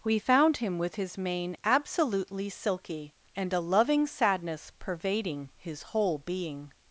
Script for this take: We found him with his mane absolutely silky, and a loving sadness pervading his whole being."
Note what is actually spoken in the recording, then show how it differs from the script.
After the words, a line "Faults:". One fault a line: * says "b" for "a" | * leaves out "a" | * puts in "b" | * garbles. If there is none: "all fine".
We found him with his mane absolutely silky, and a loving sadness pervading his whole being."
Faults:
all fine